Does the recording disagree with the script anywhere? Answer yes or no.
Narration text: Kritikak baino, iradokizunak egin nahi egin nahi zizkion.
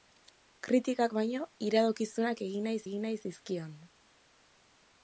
no